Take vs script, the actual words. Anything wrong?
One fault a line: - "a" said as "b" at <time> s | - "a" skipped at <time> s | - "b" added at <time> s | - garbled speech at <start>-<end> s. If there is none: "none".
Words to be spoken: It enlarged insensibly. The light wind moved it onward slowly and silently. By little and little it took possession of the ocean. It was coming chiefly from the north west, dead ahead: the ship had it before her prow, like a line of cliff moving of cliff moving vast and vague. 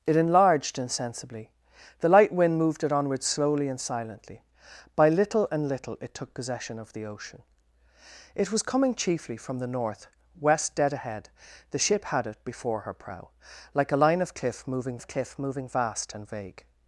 none